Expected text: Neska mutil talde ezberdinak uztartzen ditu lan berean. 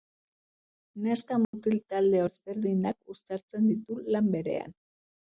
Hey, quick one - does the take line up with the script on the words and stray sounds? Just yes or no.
no